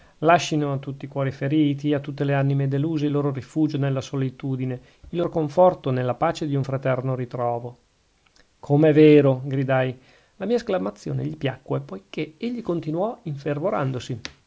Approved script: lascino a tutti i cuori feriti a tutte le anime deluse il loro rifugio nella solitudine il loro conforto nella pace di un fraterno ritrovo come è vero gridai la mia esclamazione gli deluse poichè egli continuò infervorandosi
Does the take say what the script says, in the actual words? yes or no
no